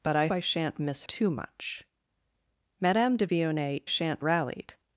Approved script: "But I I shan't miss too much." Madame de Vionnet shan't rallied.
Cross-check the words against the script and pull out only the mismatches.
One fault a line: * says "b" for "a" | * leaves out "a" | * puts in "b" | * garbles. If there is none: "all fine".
all fine